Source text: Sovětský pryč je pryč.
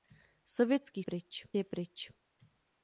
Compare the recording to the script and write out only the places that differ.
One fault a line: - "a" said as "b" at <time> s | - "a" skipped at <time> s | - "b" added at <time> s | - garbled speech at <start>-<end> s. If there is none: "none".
none